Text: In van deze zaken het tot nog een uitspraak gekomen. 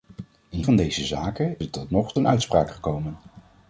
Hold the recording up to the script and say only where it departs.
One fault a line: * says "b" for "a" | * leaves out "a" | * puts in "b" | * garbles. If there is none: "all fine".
all fine